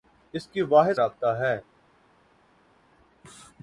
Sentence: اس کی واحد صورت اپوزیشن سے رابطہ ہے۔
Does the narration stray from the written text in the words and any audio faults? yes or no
yes